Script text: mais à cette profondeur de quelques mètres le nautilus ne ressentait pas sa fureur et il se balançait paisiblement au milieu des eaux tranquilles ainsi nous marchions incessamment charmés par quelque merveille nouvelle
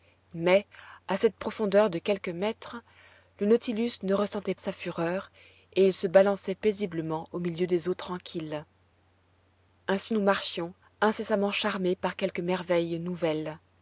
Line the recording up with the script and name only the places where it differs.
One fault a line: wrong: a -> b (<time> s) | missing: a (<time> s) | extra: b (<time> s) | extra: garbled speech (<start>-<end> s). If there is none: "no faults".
missing: pas (4.5 s)